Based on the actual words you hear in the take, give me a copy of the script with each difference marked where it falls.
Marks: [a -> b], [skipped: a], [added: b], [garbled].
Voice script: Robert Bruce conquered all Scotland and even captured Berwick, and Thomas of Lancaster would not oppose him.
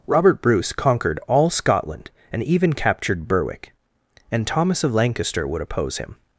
Robert Bruce conquered all Scotland and even captured Berwick, and Thomas of Lancaster would [skipped: not] oppose him.